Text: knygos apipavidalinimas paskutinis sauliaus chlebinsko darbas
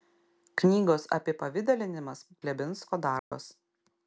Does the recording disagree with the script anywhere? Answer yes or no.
yes